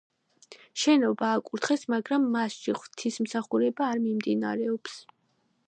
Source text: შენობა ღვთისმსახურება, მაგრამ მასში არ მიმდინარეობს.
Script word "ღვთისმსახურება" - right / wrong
wrong